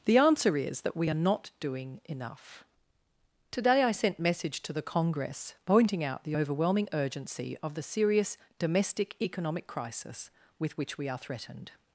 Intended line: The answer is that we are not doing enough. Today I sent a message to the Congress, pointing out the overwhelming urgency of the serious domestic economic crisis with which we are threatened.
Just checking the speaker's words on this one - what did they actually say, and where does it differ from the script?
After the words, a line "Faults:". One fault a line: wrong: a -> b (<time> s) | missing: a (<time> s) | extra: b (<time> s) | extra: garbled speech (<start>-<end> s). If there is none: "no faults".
The answer is that we are not doing enough. Today I sent message to the Congress, pointing out the overwhelming urgency of the serious domestic economic crisis with which we are threatened.
Faults:
missing: a (4.2 s)